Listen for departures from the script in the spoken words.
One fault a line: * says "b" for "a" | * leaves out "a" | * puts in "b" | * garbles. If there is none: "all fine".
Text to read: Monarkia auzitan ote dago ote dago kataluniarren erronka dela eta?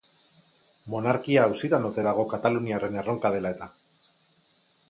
* leaves out "ote dago"